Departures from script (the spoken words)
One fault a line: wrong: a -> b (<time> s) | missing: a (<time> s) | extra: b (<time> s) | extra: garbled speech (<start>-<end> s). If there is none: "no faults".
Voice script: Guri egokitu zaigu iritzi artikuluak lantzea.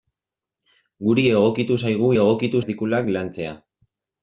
wrong: iritzi -> egokitu (2.2 s)